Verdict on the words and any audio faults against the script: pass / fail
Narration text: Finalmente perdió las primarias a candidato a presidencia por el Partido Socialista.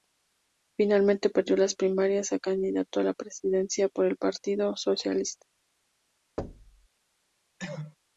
fail